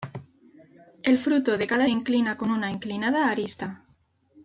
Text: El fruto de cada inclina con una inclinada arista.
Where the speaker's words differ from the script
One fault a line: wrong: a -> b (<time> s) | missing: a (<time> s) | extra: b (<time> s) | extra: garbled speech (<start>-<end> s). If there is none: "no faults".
no faults